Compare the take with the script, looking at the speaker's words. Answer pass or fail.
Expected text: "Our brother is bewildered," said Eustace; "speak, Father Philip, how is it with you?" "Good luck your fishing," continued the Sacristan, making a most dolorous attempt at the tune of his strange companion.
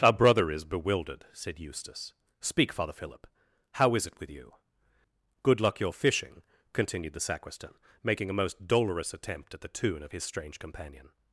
pass